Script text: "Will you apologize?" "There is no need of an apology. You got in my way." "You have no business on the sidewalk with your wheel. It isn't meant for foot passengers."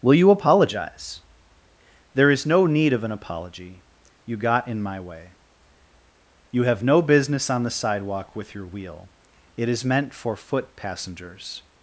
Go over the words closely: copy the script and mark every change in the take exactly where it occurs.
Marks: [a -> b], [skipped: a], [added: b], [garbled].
"Will you apologize?" "There is no need of an apology. You got in my way." "You have no business on the sidewalk with your wheel. It [isn't -> is] meant for foot passengers."